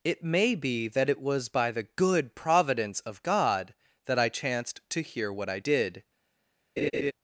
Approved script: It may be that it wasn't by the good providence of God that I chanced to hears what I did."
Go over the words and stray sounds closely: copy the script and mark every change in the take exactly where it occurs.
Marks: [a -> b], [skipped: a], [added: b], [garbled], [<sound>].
It may be that it [wasn't -> was] by the good providence of God that I chanced to [hears -> hear] what I did." [laugh]